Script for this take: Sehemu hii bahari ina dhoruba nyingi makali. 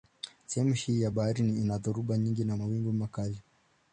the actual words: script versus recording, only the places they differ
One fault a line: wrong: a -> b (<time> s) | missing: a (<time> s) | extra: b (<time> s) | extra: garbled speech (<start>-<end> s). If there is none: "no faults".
extra: ya (1.0 s)
extra: na mawimbi (2.4 s)